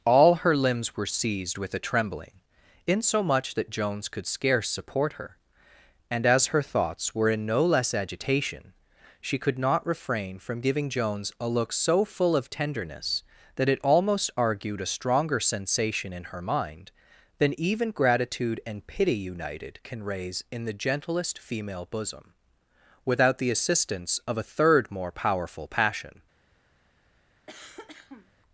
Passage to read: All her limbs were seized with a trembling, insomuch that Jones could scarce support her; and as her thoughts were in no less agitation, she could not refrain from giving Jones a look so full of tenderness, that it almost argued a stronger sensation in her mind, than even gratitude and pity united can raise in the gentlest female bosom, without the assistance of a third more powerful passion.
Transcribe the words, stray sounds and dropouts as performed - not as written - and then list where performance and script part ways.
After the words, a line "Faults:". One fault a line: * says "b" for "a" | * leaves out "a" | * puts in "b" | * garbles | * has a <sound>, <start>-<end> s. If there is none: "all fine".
All her limbs were seized with a trembling, insomuch that Jones could scarce support her; and as her thoughts were in no less agitation, she could not refrain from giving Jones a look so full of tenderness, that it almost argued a stronger sensation in her mind, than even gratitude and pity united can raise in the gentlest female bosom, without the assistance of a third more powerful passion.
Faults:
* has a cough, 27.5-28.3 s